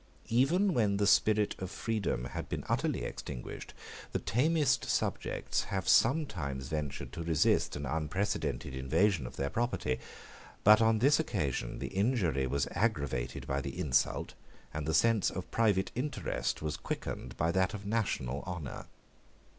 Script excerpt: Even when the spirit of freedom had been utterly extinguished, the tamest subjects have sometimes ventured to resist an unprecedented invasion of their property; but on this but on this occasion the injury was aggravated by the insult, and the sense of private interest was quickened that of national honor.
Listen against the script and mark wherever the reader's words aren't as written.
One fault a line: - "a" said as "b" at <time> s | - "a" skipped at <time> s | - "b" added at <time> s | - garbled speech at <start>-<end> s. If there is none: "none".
- "but on this" skipped at 11.2 s
- "by" added at 17.4 s